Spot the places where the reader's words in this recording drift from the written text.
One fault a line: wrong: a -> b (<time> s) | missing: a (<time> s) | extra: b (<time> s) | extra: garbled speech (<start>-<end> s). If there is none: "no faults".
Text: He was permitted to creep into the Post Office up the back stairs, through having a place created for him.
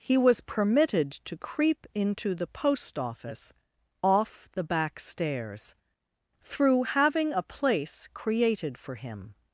wrong: up -> off (4.0 s)